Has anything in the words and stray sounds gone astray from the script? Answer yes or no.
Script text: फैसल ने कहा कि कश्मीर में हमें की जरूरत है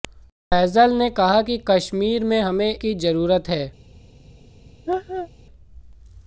yes